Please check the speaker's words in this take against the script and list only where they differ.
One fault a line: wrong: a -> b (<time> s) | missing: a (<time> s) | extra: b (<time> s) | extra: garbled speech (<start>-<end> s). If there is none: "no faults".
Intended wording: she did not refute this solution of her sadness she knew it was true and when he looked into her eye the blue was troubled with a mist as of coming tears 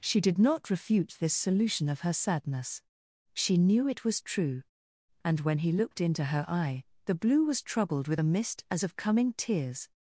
no faults